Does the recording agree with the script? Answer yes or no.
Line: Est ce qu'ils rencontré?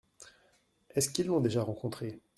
no